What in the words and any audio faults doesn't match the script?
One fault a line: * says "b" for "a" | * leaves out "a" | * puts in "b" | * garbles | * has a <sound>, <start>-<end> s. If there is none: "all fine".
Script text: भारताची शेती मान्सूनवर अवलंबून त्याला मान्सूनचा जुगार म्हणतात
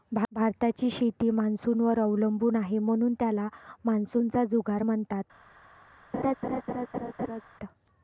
* puts in "आहे म्हणून"
* has a laugh, 6.1-7.4 s